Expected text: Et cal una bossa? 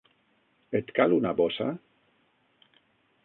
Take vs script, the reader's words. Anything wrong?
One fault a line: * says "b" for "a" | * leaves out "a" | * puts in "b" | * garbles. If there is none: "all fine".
all fine